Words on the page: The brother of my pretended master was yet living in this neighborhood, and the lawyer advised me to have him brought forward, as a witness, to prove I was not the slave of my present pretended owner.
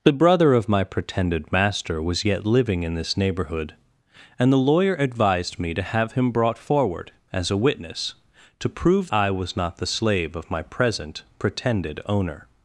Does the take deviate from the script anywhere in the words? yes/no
no